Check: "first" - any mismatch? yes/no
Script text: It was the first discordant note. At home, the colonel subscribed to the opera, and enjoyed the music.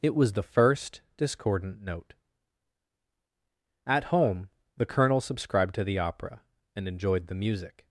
no